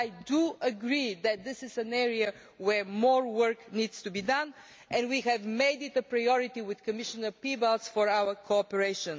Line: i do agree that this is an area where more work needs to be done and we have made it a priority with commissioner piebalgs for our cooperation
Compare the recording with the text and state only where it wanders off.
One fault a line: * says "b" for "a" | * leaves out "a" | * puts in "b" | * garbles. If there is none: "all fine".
all fine